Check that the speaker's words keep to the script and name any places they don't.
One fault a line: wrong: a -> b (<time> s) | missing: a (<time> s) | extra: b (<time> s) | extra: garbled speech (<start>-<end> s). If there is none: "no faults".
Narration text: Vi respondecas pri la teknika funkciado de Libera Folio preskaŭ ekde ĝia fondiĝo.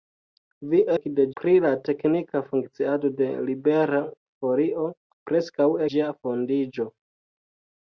wrong: respondecas -> ekde (1.0 s)
missing: ekde (5.7 s)